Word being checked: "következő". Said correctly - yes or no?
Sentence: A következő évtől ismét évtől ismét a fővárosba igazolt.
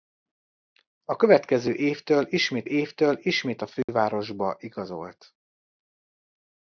yes